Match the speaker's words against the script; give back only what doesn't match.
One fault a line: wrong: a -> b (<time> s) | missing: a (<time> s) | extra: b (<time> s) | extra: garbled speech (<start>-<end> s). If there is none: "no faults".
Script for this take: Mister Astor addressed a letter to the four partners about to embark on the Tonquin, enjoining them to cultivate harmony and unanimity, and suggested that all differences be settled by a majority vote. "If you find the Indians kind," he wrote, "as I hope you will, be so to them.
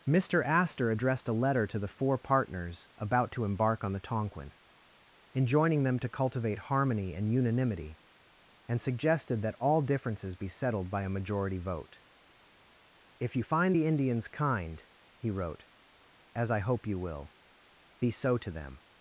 no faults